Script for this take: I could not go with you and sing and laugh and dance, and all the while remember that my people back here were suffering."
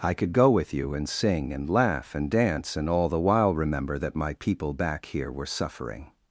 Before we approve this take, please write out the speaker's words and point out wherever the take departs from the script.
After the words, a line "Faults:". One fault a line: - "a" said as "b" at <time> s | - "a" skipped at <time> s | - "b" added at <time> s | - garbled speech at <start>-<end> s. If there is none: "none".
I could go with you and sing and laugh and dance, and all the while remember that my people back here were suffering."
Faults:
- "not" skipped at 0.3 s